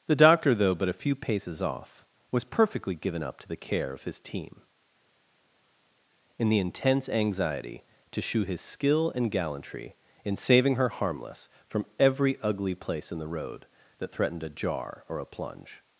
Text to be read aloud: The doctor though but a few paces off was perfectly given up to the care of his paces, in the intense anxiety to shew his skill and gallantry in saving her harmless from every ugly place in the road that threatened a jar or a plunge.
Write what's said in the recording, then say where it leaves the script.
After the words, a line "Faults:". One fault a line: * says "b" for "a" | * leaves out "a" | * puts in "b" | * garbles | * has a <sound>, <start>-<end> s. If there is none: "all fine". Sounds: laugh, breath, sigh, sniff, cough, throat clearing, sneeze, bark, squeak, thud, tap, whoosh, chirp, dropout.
The doctor though but a few paces off was perfectly given up to the care of his team, in the intense anxiety to shew his skill and gallantry in saving her harmless from every ugly place in the road that threatened a jar or a plunge.
Faults:
* says "team" for "paces"